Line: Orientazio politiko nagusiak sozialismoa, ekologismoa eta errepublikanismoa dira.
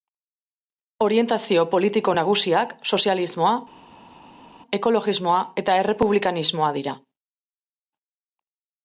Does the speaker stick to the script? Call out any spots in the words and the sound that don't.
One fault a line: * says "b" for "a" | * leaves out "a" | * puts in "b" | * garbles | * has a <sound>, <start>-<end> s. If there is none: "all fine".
all fine